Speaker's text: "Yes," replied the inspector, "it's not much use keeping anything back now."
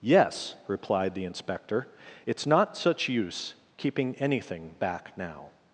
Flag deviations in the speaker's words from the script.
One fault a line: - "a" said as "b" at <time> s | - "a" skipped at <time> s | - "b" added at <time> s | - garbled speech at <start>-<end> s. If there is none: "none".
- "much" said as "such" at 2.8 s